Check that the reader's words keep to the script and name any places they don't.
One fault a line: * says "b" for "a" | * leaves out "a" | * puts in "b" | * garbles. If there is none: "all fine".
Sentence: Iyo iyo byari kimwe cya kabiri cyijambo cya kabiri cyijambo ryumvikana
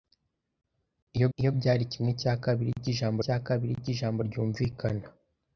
all fine